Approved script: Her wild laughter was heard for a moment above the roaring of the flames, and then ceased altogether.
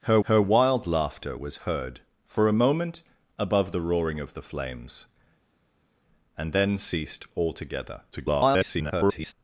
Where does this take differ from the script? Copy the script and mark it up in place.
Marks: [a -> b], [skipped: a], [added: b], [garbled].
Her [added: her] wild laughter was heard for a moment above the roaring of the flames, and then ceased altogether. [garbled]